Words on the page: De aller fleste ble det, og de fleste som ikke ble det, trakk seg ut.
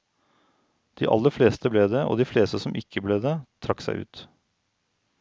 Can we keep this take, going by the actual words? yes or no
yes